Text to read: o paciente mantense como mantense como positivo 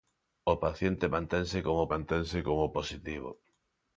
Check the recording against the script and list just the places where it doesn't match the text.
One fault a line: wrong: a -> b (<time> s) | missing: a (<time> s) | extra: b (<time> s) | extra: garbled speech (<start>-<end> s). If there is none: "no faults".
no faults